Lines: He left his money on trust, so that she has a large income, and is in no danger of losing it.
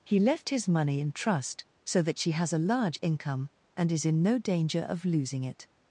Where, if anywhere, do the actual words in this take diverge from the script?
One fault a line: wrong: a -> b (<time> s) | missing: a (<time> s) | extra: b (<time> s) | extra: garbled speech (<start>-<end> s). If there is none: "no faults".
wrong: on -> in (1.0 s)